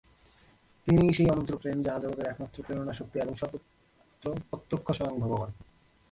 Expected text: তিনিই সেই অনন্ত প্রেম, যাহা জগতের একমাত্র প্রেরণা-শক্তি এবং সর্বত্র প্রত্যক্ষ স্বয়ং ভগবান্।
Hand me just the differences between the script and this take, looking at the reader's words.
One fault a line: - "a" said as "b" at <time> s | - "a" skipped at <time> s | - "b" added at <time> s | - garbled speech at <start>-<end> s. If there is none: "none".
none